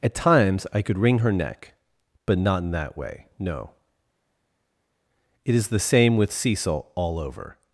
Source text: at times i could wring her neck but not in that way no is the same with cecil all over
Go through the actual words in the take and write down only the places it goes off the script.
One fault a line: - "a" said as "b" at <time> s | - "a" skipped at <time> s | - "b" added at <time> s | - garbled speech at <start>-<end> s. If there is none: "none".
- "it" added at 5.4 s